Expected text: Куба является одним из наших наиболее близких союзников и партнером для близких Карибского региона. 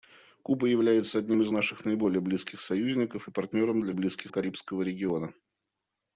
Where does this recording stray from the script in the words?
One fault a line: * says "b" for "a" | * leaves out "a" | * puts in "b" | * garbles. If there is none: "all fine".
all fine